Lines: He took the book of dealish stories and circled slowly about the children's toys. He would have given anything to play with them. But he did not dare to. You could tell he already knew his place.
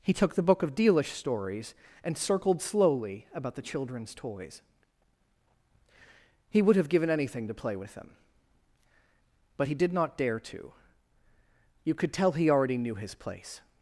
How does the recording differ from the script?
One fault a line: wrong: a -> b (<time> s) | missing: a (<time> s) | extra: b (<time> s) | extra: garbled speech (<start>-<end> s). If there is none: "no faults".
no faults